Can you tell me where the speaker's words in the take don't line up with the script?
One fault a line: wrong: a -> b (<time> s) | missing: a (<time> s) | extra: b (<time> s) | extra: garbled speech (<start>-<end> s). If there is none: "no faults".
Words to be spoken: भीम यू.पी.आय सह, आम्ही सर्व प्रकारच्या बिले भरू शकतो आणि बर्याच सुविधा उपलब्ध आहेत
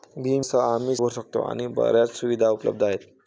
missing: यू.पी.आय (0.5 s)
missing: सर्व प्रकारच्या बिले (0.9 s)